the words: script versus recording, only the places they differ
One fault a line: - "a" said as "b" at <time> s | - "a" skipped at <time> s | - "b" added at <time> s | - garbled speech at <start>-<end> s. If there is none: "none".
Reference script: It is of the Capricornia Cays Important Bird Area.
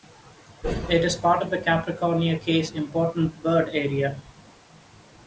- "part" added at 1.1 s